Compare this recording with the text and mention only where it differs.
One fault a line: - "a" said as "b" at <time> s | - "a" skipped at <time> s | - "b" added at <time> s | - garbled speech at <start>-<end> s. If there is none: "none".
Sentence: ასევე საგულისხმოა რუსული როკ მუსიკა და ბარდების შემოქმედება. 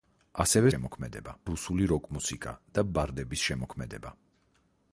- "საგულისხმოა" said as "შემოქმედება" at 0.7 s